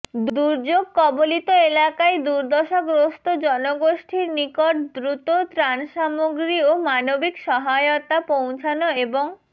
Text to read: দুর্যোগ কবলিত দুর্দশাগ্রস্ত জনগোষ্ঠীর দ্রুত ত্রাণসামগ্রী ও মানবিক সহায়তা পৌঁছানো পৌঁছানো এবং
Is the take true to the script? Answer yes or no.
no